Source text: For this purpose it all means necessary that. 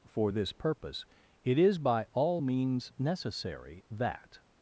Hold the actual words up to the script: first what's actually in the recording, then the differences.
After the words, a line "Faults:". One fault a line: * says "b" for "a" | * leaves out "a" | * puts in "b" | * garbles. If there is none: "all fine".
For this purpose it is by all means necessary that.
Faults:
* puts in "is by"